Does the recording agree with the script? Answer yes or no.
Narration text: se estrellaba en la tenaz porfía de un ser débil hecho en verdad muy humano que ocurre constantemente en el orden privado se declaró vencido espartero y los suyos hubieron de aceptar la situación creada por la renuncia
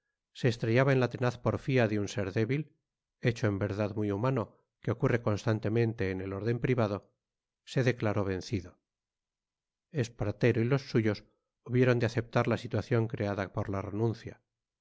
yes